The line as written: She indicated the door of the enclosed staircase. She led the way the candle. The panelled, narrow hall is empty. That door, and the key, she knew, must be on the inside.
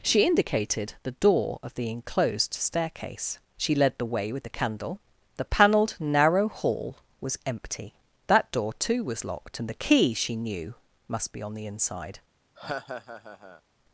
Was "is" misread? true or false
true